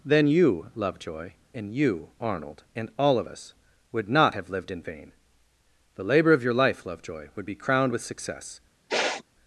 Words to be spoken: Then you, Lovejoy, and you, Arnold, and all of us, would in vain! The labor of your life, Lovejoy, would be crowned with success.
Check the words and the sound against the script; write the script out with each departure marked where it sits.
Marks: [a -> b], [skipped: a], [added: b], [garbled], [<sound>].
Then you, Lovejoy, and you, Arnold, and all of us, would [added: not have lived] in vain! The labor of your life, Lovejoy, would be crowned with success. [sniff]